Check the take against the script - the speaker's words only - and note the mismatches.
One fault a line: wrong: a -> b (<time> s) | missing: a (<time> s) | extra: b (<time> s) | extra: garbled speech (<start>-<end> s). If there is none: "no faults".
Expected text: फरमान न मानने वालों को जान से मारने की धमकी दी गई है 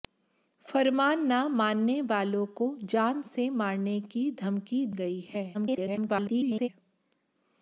missing: दी (4.9 s)
extra: garbled speech (5.5-6.7 s)